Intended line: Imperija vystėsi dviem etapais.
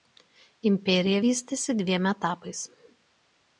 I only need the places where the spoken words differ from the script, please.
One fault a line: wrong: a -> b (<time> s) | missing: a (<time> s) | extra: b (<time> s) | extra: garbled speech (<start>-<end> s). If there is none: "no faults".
no faults